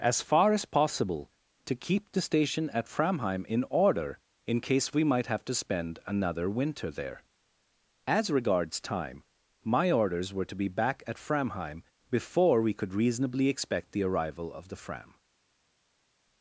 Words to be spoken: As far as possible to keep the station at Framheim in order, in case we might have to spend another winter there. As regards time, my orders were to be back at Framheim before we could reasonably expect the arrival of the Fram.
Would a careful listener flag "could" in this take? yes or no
no